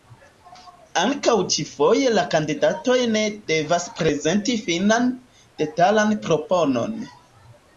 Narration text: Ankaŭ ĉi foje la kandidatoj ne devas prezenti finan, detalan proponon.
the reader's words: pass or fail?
pass